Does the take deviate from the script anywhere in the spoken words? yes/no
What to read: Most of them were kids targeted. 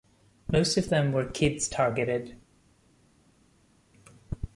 no